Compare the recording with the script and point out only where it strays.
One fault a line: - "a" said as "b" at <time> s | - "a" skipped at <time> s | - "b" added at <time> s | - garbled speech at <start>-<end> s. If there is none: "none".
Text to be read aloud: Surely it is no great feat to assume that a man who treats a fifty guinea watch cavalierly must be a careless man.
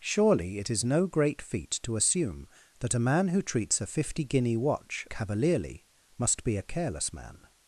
none